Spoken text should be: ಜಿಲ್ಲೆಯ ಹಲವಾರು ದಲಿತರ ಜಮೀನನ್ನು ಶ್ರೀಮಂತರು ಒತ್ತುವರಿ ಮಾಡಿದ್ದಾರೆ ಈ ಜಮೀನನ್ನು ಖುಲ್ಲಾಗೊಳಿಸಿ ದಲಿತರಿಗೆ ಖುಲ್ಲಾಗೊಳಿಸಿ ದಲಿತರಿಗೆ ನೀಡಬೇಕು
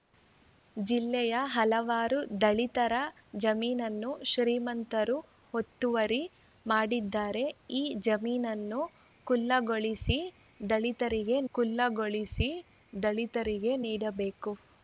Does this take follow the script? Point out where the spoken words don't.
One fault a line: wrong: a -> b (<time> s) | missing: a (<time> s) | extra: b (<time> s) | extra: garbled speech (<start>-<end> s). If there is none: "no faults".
no faults